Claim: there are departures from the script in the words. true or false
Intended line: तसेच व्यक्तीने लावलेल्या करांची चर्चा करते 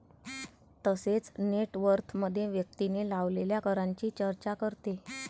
true